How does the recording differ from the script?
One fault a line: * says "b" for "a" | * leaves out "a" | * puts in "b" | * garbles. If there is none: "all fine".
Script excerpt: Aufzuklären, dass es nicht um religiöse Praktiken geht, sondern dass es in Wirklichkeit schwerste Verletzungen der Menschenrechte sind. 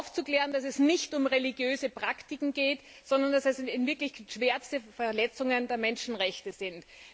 all fine